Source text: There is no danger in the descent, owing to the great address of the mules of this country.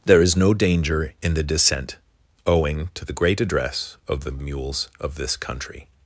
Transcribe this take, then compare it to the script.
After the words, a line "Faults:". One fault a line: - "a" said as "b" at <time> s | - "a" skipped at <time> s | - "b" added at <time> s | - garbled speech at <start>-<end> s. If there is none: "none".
There is no danger in the descent, owing to the great address of the mules of this country.
Faults:
none